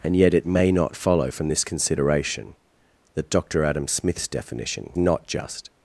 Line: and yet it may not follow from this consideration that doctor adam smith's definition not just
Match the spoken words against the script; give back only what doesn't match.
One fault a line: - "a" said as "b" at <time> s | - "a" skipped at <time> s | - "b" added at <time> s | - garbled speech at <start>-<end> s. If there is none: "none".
none